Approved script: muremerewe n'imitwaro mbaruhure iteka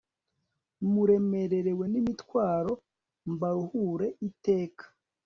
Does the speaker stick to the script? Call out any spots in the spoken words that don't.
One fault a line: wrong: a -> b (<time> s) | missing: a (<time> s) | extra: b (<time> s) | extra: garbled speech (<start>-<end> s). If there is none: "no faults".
no faults